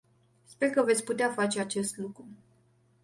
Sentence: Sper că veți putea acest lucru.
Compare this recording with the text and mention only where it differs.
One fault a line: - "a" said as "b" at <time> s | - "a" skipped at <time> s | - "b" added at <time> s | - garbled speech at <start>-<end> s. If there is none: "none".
- "face" added at 1.3 s